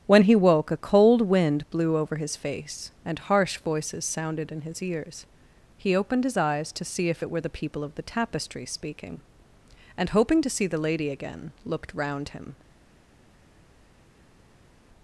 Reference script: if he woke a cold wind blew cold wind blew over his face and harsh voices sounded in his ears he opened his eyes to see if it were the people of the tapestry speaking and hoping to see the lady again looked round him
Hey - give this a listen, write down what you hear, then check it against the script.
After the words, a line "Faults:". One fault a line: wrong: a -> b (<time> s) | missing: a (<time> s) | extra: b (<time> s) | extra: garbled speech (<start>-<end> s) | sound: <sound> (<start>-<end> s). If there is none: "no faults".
when he woke a cold wind blew over his face and harsh voices sounded in his ears he opened his eyes to see if it were the people of the tapestry speaking and hoping to see the lady again looked round him
Faults:
wrong: if -> when (0.1 s)
missing: cold wind blew (2.0 s)